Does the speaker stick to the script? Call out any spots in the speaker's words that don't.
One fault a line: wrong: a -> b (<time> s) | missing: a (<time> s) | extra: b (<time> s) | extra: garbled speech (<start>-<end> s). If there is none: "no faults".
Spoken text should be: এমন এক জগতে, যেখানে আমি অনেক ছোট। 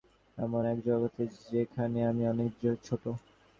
no faults